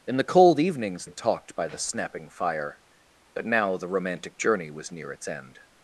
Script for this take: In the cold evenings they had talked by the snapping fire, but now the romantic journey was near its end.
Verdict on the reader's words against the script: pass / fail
fail